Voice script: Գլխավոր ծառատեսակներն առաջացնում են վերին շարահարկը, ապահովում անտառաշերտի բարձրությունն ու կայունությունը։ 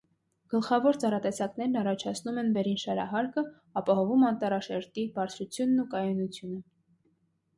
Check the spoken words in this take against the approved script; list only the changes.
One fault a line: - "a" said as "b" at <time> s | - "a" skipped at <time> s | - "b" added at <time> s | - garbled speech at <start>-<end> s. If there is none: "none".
none